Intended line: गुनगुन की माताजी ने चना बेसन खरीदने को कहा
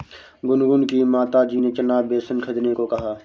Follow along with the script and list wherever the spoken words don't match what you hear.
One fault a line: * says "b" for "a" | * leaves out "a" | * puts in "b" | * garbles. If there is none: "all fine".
all fine